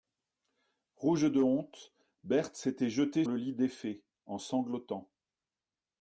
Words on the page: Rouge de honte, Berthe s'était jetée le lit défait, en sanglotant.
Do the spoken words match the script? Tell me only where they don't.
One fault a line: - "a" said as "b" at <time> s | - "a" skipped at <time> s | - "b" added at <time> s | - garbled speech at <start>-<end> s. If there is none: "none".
none